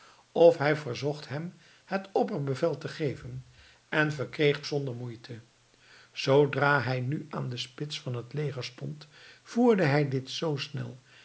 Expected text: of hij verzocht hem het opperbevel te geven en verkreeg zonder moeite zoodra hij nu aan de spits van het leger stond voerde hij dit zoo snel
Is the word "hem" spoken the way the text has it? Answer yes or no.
yes